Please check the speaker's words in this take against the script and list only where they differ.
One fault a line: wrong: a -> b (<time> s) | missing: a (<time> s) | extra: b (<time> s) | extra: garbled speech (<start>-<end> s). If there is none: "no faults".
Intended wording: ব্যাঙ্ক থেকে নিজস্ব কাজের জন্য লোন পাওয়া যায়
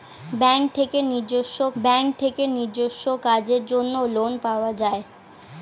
extra: ব্যাঙ্ক থেকে নিজস্ব (1.8 s)